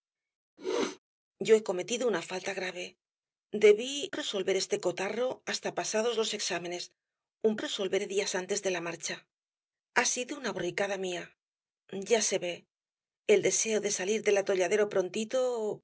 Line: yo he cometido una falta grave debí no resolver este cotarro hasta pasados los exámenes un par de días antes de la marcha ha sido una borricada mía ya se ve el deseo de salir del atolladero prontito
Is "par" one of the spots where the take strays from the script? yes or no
yes